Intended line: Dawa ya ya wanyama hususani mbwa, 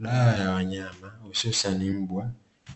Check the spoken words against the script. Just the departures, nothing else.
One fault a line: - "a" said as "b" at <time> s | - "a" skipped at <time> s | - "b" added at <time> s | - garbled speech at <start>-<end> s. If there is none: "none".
- "ya" skipped at 0.5 s